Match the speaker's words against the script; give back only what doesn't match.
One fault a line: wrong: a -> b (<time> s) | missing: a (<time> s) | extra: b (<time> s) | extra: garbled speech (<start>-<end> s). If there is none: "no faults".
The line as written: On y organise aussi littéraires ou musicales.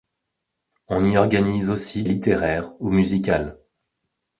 no faults